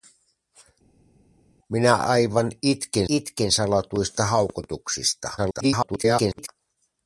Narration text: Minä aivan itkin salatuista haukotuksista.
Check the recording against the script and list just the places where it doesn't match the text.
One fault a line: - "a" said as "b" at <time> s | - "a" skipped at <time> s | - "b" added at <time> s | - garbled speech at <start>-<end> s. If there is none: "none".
- "itkin" added at 3.1 s
- garbled speech at 5.4-6.5 s